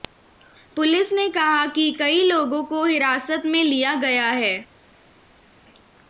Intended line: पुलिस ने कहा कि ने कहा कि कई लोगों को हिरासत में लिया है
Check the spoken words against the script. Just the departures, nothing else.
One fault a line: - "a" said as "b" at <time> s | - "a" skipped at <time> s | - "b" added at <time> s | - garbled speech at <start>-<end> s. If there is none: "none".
- "ने कहा कि" skipped at 1.9 s
- "गया" added at 4.0 s